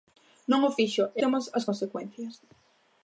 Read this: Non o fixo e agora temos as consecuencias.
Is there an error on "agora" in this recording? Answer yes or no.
yes